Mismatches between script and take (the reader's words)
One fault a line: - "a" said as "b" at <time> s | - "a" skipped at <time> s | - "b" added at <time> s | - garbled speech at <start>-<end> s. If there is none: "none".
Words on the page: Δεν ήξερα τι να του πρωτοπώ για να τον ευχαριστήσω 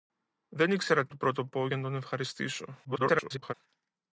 - "να" skipped at 1.1 s
- garbled speech at 2.8-3.5 s